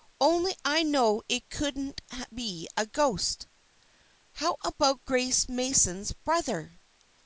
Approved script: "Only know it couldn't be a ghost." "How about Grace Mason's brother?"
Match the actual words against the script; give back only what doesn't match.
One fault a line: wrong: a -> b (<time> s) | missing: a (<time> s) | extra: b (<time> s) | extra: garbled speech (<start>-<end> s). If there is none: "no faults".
extra: I (0.7 s)